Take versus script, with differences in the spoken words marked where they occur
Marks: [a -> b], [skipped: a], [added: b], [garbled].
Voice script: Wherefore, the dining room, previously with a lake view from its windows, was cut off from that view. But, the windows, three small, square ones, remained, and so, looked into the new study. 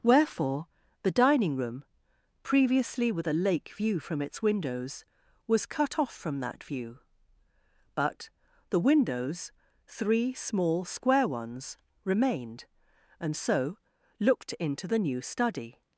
Wherefore, the dining room, previously with a lake view from its windows, was cut off from that view. But, the windows, three small, square ones, remained, and so, looked into the new study.